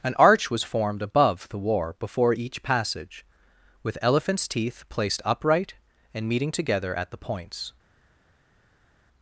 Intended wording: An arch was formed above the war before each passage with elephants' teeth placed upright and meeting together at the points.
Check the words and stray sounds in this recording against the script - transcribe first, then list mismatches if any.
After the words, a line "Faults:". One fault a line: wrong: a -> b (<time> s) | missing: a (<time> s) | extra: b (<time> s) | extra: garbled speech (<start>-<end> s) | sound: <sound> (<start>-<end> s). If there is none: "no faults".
An arch was formed above the war before each passage with elephants' teeth placed upright and meeting together at the points.
Faults:
no faults